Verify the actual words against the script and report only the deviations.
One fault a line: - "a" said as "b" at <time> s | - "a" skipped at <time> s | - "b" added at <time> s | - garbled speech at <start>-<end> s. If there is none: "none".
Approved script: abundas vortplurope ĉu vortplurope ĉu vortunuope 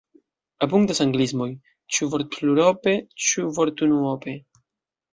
- "vortplurope" said as "anglismoj" at 1.1 s